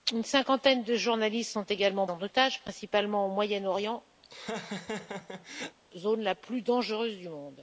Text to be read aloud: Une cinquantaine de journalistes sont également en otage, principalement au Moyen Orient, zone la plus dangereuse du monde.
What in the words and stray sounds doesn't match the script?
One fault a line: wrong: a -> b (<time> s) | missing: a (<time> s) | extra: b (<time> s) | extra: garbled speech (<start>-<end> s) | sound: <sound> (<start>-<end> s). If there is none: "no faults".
sound: laugh (4.2-5.8 s)